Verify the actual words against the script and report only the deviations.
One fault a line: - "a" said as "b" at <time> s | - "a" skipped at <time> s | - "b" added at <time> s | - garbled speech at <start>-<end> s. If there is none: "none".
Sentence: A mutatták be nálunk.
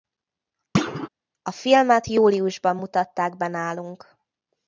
- "filmet júliusban" added at 1.5 s